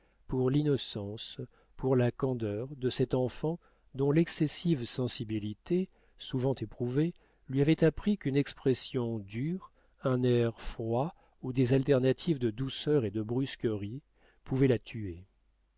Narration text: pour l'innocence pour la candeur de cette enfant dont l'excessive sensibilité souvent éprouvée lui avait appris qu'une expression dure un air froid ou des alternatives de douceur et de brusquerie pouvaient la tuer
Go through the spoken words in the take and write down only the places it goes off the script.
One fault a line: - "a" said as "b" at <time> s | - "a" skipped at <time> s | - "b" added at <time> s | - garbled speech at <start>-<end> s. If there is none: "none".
none